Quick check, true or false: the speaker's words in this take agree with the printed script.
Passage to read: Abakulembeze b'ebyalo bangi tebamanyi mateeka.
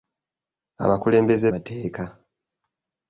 false